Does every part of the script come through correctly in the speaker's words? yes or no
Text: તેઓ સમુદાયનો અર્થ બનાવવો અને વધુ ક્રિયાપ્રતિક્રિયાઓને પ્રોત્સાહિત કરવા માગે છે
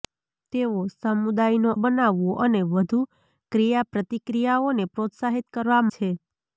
no